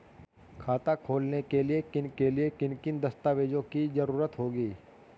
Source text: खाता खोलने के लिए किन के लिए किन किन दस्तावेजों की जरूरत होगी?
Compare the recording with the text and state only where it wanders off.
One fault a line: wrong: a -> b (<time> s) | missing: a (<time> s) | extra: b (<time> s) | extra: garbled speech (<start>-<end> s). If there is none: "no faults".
no faults